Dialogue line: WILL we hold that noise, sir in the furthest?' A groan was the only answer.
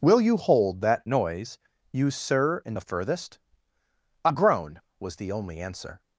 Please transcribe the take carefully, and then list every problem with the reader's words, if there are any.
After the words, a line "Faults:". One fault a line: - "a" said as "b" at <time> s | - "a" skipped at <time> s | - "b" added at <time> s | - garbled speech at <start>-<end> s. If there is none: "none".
WILL you hold that noise, you sir in the furthest?' A groan was the only answer.
Faults:
- "we" said as "you" at 0.2 s
- "you" added at 1.9 s